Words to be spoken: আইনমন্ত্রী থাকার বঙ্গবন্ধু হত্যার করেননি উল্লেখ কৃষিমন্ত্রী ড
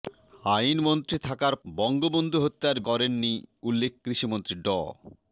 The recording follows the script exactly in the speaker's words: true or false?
true